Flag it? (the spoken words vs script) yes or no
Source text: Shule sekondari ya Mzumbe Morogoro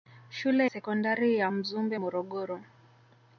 no